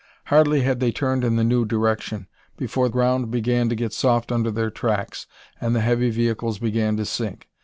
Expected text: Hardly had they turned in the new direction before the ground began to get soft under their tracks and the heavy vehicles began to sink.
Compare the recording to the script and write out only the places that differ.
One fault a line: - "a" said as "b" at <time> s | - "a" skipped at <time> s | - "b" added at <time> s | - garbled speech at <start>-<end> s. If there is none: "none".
- "the" skipped at 2.9 s